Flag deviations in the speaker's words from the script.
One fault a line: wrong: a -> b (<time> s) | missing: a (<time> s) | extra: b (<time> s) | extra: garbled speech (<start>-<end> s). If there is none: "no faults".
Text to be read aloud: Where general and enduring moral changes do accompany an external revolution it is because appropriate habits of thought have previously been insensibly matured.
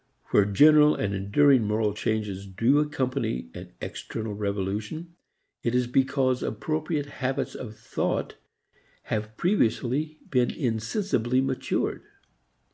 no faults